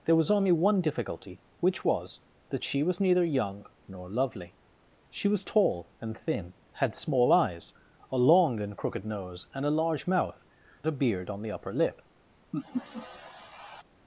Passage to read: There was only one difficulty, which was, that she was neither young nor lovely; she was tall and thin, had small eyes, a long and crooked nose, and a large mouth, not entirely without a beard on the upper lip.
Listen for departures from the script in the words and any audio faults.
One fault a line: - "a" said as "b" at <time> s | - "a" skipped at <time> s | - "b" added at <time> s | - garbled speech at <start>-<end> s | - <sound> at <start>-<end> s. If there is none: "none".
- "not entirely without" skipped at 10.5 s
- laugh at 12.5-13.8 s